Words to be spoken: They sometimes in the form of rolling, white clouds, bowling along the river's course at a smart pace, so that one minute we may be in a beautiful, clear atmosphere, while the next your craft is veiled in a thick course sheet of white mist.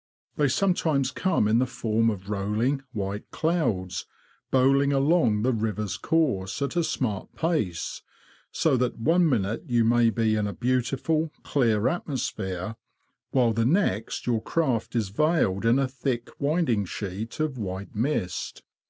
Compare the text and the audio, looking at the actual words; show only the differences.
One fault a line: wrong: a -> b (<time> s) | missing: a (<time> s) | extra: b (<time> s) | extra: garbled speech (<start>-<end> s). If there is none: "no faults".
extra: come (1.1 s)
wrong: we -> you (9.7 s)
wrong: course -> winding (16.4 s)